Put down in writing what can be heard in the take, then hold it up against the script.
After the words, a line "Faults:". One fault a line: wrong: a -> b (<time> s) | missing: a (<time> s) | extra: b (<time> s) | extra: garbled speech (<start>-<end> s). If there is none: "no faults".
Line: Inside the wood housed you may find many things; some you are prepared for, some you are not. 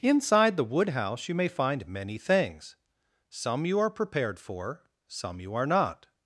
Inside the wood house you may find many things; some you are prepared for, some you are not.
Faults:
wrong: housed -> house (0.9 s)